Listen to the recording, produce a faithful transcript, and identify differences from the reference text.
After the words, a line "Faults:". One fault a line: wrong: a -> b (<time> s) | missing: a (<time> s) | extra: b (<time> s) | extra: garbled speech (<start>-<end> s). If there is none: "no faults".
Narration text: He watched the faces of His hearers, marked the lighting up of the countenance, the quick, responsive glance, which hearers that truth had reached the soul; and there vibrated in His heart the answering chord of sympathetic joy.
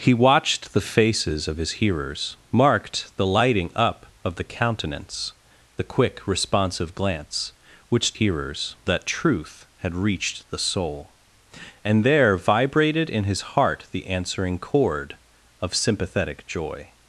He watched the faces of His hearers, marked the lighting up of the countenance, the quick, responsive glance, which hearers that truth had reached the soul; and there vibrated in His heart the answering chord of sympathetic joy.
Faults:
no faults